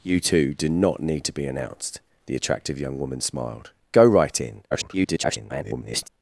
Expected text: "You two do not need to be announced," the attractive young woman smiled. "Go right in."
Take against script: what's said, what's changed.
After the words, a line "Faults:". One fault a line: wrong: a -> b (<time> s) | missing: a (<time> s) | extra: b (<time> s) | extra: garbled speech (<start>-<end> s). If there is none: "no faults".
"You two do not need to be announced," the attractive young woman smiled. "Go right in." [garbled]
Faults:
extra: garbled speech (4.7-6.1 s)